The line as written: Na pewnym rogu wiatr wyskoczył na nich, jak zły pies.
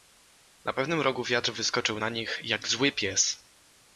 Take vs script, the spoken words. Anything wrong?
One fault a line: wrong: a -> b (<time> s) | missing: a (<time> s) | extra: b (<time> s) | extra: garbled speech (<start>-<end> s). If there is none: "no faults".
no faults